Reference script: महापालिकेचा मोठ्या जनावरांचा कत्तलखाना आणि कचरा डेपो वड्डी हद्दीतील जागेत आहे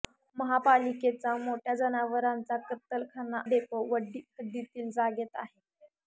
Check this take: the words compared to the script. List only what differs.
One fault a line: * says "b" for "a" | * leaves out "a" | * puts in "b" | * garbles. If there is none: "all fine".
* leaves out "आणि कचरा"